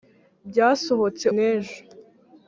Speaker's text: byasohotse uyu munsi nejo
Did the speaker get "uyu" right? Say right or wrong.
wrong